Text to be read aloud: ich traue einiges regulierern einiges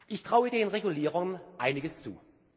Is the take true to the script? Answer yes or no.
no